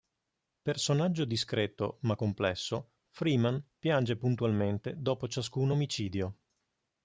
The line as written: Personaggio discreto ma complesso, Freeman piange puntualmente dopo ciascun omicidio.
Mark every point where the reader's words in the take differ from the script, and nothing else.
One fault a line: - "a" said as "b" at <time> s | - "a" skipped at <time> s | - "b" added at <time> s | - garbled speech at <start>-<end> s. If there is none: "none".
none